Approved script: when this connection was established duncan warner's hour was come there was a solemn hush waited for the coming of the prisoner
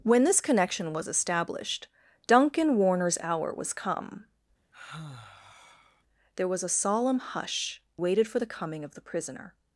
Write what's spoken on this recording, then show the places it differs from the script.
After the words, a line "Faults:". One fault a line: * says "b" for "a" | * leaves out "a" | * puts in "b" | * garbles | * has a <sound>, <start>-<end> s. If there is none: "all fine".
when this connection was established duncan warner's hour was come there was a solemn hush waited for the coming of the prisoner
Faults:
* has a sigh, 4.7-6.0 s